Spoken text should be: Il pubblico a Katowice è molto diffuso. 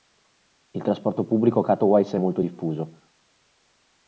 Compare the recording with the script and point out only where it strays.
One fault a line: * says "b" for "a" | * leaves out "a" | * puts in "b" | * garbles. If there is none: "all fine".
* puts in "trasporto"